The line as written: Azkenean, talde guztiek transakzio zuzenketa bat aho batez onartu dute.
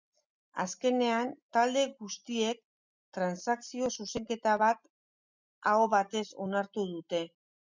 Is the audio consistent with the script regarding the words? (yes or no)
yes